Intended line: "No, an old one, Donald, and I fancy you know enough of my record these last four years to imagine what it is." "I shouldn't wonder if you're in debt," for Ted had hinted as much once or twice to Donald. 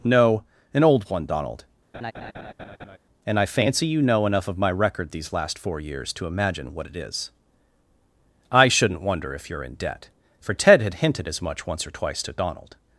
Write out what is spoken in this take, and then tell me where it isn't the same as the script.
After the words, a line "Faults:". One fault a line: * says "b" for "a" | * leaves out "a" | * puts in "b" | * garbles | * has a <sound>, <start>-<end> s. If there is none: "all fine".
"No, an old one, Donald, and I fancy you know enough of my record these last four years to imagine what it is." "I shouldn't wonder if you're in debt," for Ted had hinted as much once or twice to Donald.
Faults:
* has a laugh, 1.9-3.0 s